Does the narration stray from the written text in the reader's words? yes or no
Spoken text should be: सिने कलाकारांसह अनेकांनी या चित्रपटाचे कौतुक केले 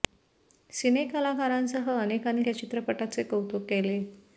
no